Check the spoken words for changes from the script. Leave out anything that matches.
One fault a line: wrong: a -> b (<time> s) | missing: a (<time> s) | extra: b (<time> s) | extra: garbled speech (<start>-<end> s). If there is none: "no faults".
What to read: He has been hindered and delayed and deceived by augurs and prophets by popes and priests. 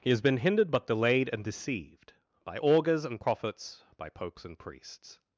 wrong: and -> but (0.7 s)